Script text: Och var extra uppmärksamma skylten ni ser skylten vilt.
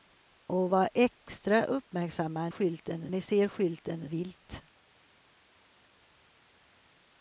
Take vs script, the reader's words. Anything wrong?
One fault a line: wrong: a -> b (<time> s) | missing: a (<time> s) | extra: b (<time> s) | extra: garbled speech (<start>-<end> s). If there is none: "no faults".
no faults